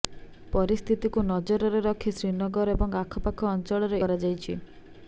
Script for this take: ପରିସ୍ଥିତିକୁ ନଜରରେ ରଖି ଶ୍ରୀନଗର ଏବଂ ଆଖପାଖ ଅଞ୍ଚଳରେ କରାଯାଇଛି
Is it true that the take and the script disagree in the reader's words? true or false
false